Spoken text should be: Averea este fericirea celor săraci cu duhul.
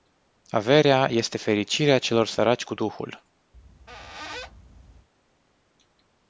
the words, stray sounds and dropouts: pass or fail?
fail